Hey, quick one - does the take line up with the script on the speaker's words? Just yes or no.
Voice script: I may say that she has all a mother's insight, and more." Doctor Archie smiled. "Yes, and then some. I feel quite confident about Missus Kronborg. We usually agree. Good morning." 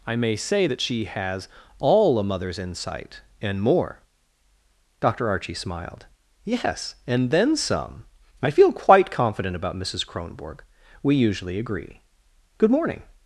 yes